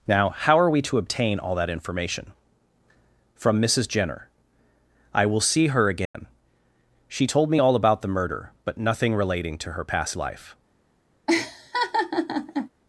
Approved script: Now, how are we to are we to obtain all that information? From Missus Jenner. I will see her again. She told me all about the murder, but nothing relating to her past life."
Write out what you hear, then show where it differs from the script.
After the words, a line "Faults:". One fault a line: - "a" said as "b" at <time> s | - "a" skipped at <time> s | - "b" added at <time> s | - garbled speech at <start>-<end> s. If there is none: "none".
Now, how are we to obtain all that information? From Missus Jenner. I will see her again. She told me all about the murder, but nothing relating to her past life."
Faults:
- "are we to" skipped at 1.0 s